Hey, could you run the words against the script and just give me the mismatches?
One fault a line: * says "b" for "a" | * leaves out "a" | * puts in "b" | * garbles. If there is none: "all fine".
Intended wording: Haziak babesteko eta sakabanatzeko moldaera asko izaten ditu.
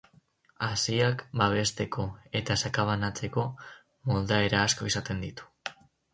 all fine